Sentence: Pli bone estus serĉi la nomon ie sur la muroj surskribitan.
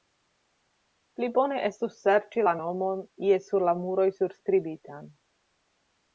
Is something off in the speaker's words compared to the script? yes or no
no